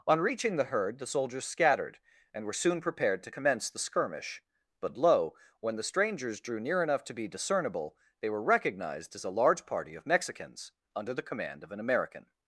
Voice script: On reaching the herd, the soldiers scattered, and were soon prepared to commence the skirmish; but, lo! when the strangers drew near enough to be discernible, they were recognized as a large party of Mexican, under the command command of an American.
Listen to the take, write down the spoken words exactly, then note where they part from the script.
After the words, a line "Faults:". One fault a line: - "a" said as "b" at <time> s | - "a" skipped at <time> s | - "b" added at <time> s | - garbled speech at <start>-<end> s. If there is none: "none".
On reaching the herd, the soldiers scattered, and were soon prepared to commence the skirmish; but, lo! when the strangers drew near enough to be discernible, they were recognized as a large party of Mexicans, under the command of an American.
Faults:
- "Mexican" said as "Mexicans" at 10.1 s
- "command" skipped at 11.6 s